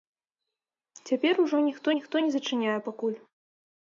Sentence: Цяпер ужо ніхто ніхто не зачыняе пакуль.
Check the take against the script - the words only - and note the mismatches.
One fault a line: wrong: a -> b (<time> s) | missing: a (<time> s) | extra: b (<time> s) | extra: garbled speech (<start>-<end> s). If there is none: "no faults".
no faults